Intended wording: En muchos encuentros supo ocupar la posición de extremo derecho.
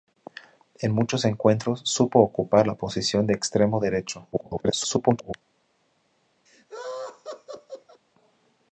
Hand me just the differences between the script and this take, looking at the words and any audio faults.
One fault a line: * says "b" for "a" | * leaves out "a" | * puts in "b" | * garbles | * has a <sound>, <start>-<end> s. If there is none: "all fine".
* garbles
* has a laugh, 6.5-8.0 s